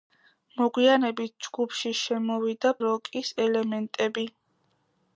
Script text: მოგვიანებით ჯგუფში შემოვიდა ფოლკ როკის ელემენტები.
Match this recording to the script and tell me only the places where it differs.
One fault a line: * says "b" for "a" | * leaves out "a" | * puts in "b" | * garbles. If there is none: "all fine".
* leaves out "ფოლკ"